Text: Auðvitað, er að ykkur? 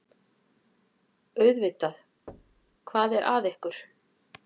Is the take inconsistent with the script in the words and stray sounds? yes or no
yes